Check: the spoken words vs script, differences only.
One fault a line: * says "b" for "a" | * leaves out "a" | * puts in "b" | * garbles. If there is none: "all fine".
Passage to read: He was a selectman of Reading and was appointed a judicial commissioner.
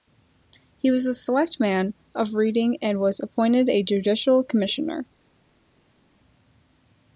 all fine